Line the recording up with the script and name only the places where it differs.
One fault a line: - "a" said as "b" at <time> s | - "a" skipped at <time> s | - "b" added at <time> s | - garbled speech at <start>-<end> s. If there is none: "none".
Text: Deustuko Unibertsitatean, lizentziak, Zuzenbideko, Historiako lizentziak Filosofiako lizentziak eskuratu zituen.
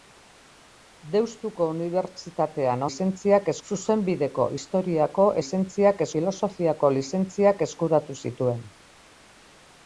none